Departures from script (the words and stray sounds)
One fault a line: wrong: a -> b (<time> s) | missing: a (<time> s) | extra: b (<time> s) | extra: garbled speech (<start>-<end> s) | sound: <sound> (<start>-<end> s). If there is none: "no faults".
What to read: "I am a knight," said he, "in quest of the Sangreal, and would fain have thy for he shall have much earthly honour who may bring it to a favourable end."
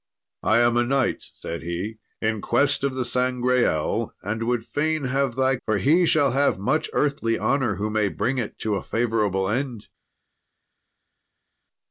no faults